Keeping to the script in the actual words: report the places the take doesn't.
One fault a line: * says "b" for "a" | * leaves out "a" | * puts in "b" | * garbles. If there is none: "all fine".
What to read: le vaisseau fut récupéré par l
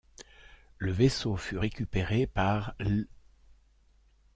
all fine